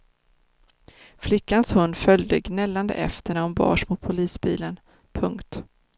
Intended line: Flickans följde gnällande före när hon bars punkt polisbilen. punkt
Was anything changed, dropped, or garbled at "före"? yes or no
yes